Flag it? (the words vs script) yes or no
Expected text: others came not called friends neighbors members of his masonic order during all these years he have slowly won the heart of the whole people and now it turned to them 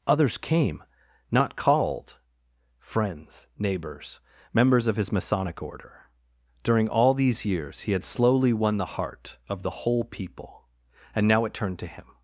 yes